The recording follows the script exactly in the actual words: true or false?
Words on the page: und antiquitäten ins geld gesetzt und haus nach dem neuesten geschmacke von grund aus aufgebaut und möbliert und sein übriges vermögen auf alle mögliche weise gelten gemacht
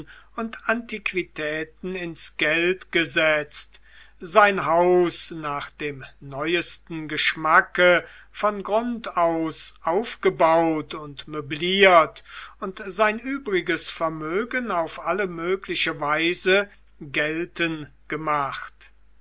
false